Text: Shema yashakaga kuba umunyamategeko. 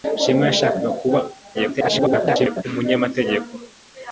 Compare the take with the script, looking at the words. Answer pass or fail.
fail